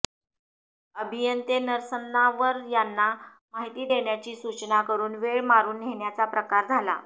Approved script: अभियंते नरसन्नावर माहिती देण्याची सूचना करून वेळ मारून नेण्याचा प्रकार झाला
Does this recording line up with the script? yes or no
no